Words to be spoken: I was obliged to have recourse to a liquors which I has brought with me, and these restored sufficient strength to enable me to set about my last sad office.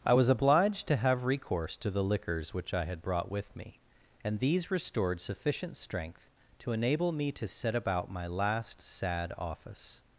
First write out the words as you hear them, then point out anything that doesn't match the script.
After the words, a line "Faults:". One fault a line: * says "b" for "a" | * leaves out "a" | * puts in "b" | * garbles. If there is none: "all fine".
I was obliged to have recourse to the liquors which I had brought with me, and these restored sufficient strength to enable me to set about my last sad office.
Faults:
* says "the" for "a"
* says "had" for "has"